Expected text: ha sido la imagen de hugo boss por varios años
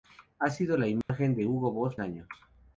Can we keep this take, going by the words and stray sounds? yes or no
no